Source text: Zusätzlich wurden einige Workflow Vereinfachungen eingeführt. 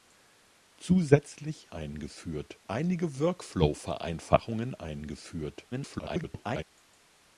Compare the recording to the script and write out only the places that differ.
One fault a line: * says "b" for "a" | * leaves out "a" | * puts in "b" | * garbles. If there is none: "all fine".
* says "eingeführt" for "wurden"
* garbles